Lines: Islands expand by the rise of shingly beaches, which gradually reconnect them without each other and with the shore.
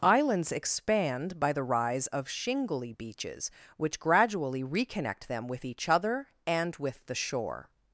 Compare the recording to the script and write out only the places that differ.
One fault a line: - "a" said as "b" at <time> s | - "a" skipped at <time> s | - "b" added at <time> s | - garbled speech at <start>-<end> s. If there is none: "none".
- "without" said as "with" at 5.5 s